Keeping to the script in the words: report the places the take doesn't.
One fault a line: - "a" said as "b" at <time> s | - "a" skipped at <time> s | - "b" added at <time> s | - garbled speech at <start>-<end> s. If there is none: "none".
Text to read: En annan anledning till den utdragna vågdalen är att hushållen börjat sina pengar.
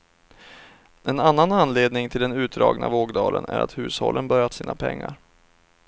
none